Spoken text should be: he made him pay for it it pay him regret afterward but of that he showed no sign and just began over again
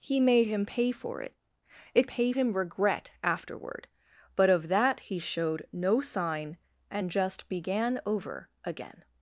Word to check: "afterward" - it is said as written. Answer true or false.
true